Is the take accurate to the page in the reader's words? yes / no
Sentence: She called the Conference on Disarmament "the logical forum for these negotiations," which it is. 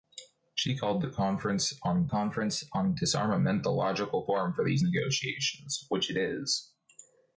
no